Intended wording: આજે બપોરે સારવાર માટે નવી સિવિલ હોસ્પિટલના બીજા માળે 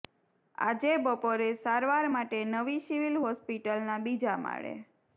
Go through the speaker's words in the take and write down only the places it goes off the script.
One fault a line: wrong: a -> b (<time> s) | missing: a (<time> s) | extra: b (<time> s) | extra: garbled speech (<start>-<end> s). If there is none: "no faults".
no faults